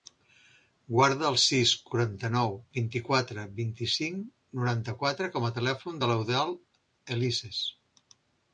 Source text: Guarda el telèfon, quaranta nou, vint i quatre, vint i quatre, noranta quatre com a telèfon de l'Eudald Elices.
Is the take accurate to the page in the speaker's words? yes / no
no